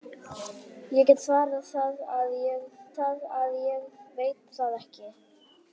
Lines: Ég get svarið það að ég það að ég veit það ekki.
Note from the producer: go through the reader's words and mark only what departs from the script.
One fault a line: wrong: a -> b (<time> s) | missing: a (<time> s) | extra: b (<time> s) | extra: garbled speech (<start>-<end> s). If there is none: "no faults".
no faults